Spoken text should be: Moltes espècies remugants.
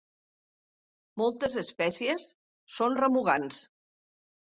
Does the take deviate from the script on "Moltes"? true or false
false